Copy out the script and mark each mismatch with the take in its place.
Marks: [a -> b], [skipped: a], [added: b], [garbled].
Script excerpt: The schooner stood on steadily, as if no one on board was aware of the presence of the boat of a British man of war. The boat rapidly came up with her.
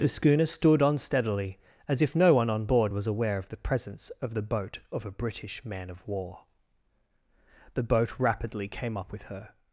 The schooner stood on steadily, as if no one on board was aware of the presence of the boat of a British man of war. The boat rapidly came up with her.